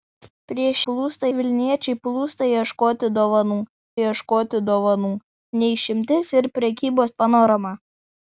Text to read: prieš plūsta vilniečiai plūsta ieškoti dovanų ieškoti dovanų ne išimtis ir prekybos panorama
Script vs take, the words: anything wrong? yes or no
no